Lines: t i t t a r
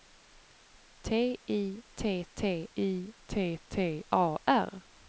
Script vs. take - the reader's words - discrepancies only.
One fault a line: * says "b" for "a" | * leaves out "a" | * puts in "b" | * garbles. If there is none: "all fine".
* puts in "i t t"